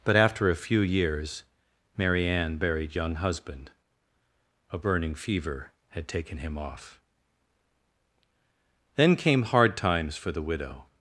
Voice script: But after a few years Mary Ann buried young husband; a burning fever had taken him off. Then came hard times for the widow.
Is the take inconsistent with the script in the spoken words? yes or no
no